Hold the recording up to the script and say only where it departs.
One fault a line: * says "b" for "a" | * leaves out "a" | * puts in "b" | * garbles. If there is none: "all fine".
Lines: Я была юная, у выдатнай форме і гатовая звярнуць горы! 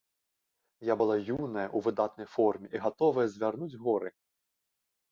all fine